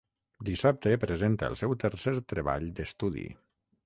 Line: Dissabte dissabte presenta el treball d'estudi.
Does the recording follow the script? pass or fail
fail